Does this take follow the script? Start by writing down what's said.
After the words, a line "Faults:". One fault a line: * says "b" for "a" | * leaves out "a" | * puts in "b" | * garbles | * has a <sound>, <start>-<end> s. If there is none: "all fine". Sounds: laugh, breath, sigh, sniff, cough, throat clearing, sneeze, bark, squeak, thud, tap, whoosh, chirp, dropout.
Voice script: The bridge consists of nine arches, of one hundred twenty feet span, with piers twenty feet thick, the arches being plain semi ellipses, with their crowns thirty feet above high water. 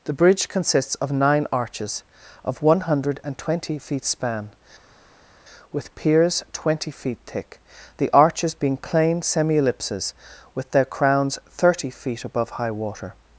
The bridge consists of nine arches, of one hundred twenty feet span, with piers twenty feet thick, the arches being plain semi ellipses, with their crowns thirty feet above high water.
Faults:
all fine